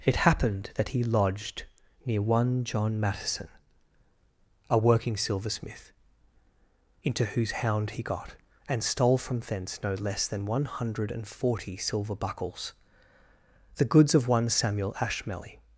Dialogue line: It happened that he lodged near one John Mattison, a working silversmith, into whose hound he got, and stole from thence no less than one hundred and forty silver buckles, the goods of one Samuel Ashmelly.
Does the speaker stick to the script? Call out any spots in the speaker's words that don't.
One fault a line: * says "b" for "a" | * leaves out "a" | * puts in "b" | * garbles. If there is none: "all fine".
all fine